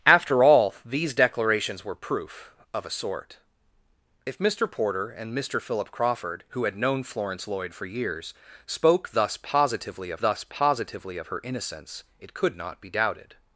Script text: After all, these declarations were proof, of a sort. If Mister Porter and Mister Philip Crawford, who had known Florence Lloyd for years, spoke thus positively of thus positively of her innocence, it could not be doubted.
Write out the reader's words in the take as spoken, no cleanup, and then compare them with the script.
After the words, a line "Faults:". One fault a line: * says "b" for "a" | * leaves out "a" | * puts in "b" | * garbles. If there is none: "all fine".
After all, these declarations were proof, of a sort. If Mister Porter and Mister Philip Crawford, who had known Florence Lloyd for years, spoke thus positively of thus positively of her innocence, it could not be doubted.
Faults:
all fine